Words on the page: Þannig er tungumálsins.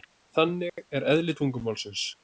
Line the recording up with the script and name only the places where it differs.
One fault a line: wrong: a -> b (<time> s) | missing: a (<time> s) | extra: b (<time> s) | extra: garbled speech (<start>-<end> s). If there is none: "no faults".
extra: eðli (1.1 s)